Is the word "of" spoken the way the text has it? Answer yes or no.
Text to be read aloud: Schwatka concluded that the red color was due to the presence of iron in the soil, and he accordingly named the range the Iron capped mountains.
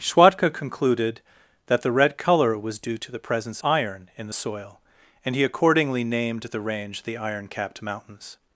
no